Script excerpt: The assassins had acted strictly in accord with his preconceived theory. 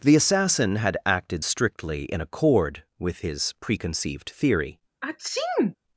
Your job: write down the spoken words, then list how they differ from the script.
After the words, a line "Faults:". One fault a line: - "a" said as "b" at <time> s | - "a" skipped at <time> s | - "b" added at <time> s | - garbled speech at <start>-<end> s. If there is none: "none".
The assassin had acted strictly in accord with his preconceived theory.
Faults:
- "assassins" said as "assassin" at 0.1 s